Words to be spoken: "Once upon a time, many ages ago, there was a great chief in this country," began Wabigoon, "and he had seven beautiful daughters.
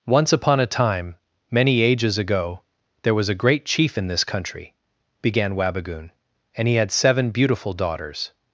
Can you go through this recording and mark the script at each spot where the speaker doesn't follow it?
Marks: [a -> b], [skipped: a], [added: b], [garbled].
"Once upon a time, many ages ago, there was a great chief in this country," began Wabigoon, "and he had seven beautiful daughters.